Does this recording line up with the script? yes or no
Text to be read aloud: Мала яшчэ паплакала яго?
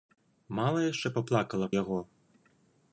yes